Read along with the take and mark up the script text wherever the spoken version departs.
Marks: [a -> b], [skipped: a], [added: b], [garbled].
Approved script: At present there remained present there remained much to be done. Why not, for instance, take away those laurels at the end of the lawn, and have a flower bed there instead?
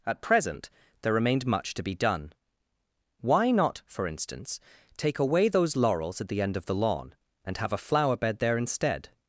At present there remained [skipped: present there remained] much to be done. Why not, for instance, take away those laurels at the end of the lawn, and have a flower bed there instead?